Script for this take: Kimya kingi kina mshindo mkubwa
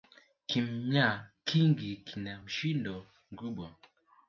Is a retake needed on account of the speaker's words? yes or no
no